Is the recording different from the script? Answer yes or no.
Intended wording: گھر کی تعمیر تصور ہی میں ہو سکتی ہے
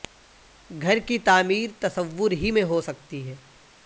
no